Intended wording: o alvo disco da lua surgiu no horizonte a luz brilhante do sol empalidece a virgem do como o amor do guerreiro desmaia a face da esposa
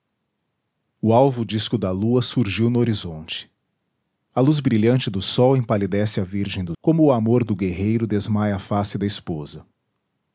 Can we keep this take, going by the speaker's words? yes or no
yes